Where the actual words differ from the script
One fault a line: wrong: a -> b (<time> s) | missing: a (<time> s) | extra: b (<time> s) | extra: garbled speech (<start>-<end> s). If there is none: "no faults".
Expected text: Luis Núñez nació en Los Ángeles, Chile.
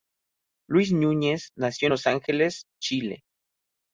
no faults